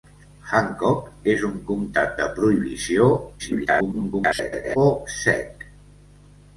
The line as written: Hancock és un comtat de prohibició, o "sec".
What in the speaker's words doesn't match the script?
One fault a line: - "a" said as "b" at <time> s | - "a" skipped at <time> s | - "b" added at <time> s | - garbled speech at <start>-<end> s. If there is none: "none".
- garbled speech at 3.4-4.8 s